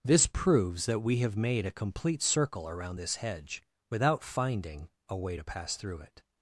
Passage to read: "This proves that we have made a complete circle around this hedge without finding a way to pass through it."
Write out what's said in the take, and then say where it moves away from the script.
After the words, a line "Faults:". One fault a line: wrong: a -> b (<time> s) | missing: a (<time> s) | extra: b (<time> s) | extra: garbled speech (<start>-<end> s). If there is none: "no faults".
"This proves that we have made a complete circle around this hedge without finding a way to pass through it."
Faults:
no faults